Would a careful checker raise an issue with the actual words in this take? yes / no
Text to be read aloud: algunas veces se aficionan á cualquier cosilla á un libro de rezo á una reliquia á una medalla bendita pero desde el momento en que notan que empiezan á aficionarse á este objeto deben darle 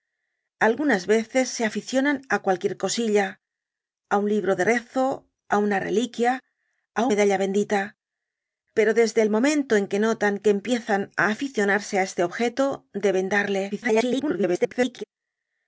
yes